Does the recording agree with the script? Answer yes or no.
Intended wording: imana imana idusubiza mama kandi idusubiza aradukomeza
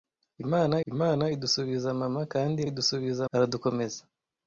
yes